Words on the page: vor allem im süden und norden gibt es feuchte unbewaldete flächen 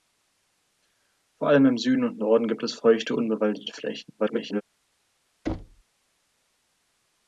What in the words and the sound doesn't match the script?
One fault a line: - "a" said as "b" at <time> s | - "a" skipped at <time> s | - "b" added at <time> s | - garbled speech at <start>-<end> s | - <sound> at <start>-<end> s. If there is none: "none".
- garbled speech at 4.2-4.6 s
- thud at 5.5-5.8 s